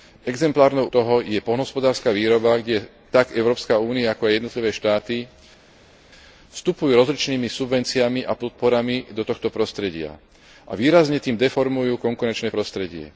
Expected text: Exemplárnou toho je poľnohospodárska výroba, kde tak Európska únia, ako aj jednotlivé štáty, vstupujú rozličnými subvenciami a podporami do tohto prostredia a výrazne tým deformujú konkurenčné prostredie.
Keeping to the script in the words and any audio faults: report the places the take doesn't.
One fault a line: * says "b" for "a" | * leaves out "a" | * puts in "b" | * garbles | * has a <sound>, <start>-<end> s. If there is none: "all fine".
all fine